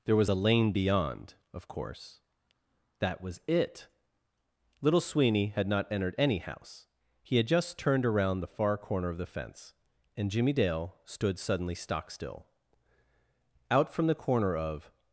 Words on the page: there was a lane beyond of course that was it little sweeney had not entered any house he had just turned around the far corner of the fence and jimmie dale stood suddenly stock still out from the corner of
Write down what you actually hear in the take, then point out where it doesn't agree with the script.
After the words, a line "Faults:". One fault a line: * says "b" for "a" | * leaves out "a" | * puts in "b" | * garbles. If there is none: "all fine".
there was a lane beyond of course that was it little sweeney had not entered any house he had just turned around the far corner of the fence and jimmie dale stood suddenly stock still out from the corner of
Faults:
all fine